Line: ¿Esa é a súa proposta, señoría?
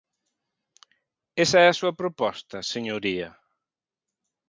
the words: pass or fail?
pass